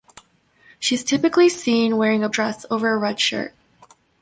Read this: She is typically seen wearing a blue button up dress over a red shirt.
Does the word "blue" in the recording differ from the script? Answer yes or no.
yes